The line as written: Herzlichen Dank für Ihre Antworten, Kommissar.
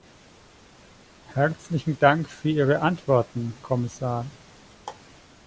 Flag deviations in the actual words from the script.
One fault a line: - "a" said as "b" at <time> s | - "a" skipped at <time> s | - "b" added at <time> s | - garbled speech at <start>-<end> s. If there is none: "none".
none